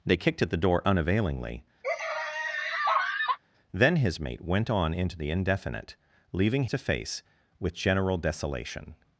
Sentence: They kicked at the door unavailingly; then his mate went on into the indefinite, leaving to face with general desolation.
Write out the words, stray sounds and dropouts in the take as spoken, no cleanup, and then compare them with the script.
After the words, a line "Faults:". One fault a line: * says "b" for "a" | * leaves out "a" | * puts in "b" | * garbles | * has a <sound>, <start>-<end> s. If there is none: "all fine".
They kicked at the door unavailingly; then his mate went on into the indefinite, leaving to face with general desolation.
Faults:
* has a laugh, 1.8-3.4 s